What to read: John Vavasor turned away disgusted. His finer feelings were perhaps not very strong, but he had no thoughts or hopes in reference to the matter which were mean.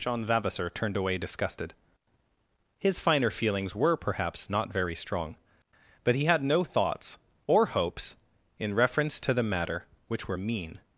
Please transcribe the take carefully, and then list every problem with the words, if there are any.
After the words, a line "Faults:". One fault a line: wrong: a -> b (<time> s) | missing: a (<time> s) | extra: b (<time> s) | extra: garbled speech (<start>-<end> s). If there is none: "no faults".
John Vavasor turned away disgusted. His finer feelings were perhaps not very strong, but he had no thoughts or hopes in reference to the matter which were mean.
Faults:
no faults